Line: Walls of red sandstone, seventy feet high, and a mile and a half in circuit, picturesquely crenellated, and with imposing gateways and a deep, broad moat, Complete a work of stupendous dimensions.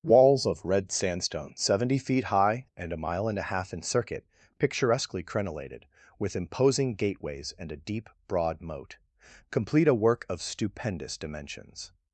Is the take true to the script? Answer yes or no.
no